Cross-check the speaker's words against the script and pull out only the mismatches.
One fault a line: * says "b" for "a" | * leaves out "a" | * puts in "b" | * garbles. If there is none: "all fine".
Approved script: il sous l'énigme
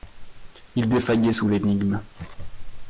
* puts in "défaillait"